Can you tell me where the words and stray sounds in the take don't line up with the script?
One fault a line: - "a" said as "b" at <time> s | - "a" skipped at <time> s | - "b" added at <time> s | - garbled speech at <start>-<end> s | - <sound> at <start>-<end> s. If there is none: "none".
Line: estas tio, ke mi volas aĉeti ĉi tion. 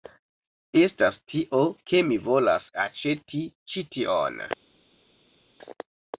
none